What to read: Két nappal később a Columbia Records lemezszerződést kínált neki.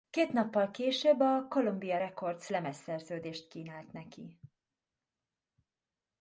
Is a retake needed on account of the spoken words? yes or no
no